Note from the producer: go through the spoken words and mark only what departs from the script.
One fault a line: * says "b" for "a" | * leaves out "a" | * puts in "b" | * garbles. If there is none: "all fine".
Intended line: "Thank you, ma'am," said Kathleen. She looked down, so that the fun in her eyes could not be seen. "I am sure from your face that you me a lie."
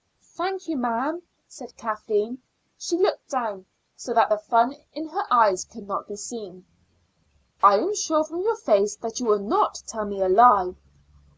* puts in "will not tell"